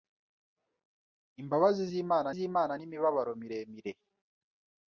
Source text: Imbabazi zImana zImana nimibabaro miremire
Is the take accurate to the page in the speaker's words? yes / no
yes